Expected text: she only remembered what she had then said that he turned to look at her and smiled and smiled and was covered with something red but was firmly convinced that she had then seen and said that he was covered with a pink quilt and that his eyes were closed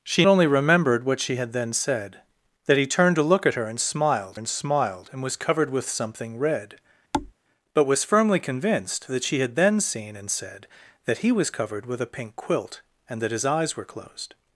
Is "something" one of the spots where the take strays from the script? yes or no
no